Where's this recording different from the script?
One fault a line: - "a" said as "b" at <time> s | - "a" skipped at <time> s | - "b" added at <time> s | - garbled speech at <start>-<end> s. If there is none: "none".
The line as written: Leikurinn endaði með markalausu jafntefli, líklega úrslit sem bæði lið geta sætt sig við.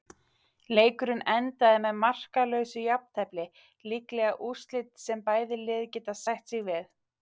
none